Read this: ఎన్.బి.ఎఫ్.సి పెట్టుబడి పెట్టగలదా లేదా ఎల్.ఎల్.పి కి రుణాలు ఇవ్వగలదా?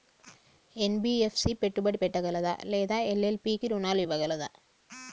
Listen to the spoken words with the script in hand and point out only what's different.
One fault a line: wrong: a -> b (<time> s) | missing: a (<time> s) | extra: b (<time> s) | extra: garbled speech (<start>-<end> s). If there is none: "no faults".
no faults